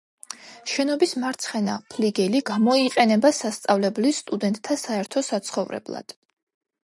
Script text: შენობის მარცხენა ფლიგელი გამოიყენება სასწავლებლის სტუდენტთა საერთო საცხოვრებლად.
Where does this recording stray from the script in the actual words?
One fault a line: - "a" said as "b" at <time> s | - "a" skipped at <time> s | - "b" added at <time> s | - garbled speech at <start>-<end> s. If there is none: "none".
none